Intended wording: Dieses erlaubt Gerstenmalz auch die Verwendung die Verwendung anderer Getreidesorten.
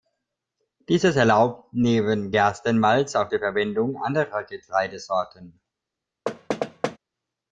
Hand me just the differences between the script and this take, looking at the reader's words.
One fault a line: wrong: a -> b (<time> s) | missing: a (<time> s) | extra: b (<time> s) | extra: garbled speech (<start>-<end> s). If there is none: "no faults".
extra: neben (1.7 s)
missing: die Verwendung (4.0 s)